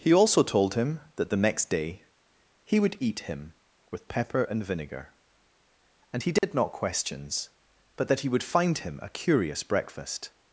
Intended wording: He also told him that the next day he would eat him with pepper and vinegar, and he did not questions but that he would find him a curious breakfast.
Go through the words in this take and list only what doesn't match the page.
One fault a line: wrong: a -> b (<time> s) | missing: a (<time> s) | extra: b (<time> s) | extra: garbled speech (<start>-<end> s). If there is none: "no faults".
no faults